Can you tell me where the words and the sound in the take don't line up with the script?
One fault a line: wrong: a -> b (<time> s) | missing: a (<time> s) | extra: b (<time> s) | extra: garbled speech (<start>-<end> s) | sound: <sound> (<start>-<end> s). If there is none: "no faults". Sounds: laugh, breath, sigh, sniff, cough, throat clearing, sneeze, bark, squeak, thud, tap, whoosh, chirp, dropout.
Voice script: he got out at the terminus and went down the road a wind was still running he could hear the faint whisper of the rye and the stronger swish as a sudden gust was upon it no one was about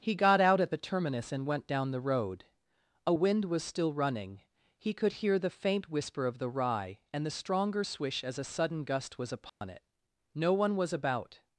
sound: dropout (9.5-9.6 s)